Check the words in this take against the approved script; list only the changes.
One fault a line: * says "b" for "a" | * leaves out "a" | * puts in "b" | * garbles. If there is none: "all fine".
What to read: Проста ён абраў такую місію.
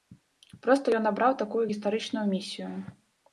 * puts in "гістарычную"